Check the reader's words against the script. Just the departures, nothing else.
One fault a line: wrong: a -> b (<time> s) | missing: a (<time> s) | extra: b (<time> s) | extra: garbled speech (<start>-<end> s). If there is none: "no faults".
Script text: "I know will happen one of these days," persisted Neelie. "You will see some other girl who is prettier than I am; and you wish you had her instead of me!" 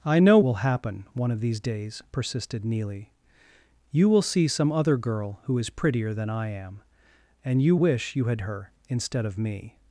no faults